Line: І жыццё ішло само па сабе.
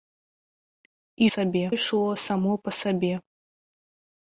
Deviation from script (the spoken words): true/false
true